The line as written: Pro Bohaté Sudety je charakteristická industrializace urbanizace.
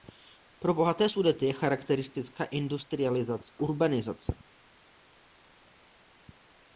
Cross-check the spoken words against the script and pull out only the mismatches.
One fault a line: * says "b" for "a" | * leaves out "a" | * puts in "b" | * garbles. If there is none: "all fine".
all fine